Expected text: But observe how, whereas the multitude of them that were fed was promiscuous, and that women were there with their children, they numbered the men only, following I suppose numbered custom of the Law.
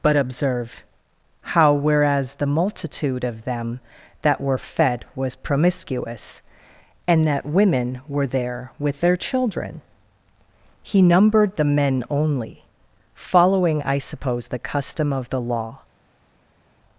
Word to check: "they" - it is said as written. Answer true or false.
false